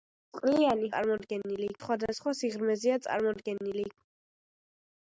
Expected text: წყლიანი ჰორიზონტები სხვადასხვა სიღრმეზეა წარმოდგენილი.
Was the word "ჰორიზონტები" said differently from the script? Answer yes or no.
yes